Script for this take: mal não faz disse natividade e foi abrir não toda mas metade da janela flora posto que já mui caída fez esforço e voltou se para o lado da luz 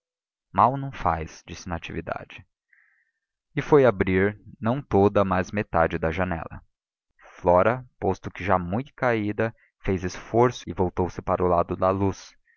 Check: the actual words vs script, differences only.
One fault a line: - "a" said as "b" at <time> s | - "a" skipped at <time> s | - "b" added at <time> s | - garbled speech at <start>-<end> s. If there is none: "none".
none